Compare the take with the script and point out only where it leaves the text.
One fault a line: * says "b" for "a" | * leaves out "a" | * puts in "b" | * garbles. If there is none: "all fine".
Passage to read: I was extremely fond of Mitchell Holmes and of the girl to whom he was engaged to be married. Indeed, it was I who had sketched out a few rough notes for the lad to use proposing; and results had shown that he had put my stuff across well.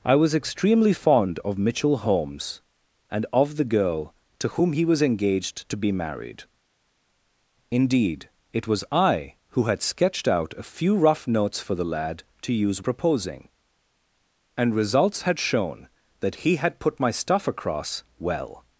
all fine